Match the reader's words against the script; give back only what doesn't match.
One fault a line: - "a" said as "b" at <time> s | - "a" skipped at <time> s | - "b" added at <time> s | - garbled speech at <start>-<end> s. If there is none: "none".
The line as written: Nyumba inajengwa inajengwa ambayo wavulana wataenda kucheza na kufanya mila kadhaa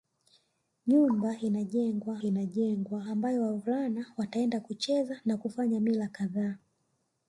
none